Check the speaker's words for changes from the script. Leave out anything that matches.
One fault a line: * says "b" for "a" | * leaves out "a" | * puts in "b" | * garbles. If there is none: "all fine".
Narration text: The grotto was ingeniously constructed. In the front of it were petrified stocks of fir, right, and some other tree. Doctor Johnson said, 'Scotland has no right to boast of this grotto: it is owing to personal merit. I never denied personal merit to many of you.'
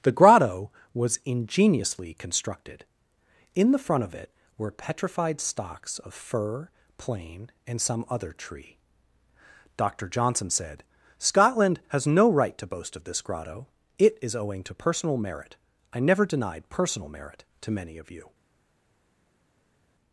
* says "plane" for "right"